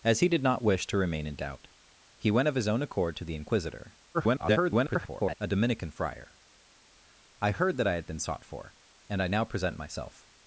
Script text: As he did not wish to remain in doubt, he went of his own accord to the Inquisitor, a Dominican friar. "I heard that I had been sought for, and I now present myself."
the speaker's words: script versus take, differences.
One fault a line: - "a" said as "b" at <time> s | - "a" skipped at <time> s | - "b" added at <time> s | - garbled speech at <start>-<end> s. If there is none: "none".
- garbled speech at 4.1-5.3 s